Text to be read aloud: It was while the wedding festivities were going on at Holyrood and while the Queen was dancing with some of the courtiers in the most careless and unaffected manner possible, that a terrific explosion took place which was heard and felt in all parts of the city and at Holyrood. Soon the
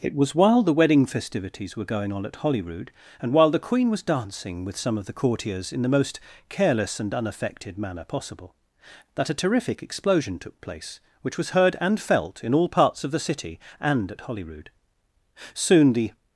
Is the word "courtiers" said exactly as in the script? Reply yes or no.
yes